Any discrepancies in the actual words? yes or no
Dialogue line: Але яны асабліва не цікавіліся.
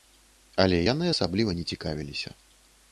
no